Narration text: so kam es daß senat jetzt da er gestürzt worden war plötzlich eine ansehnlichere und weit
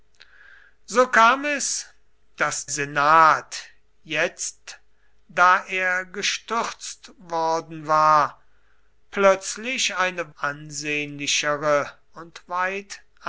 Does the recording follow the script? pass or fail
pass